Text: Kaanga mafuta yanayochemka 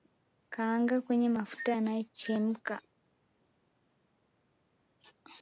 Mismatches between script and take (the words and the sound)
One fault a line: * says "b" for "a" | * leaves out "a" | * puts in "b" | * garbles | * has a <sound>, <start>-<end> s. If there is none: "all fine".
* puts in "kwenye"